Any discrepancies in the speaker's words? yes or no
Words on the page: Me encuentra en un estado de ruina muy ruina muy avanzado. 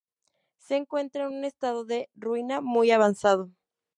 yes